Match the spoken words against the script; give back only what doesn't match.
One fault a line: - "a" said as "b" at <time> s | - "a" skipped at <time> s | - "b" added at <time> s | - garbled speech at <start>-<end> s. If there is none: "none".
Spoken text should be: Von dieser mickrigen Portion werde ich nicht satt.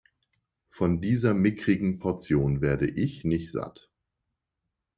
none